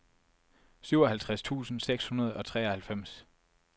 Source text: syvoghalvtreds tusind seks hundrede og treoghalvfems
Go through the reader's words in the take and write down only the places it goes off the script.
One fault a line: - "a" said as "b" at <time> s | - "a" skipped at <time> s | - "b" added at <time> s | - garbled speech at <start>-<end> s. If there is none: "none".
none